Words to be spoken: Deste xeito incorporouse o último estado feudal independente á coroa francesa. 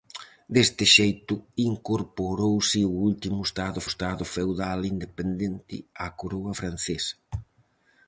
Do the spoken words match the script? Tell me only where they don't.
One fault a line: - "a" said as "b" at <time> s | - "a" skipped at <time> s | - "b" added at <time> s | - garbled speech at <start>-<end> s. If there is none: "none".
- "estado" added at 3.9 s